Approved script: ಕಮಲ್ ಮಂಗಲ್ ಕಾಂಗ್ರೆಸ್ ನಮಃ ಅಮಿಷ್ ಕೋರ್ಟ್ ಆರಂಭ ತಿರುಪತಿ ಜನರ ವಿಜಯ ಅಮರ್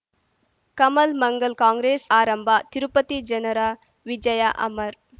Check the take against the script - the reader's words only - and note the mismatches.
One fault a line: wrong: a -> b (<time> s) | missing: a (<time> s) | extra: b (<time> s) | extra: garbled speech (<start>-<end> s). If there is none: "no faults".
missing: ನಮಃ ಅಮಿಷ್ ಕೋರ್ಟ್ (2.0 s)